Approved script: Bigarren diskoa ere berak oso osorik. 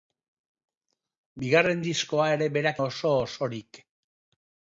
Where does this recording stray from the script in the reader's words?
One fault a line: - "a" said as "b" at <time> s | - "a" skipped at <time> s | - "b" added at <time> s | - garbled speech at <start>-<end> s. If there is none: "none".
none